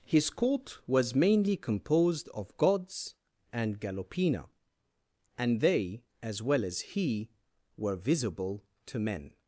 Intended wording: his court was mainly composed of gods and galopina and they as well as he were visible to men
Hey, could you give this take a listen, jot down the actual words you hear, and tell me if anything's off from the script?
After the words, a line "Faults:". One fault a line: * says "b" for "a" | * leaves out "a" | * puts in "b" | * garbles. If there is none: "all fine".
his court was mainly composed of gods and galopina and they as well as he were visible to men
Faults:
all fine